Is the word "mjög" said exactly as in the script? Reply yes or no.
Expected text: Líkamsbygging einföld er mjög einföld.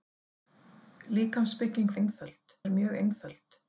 yes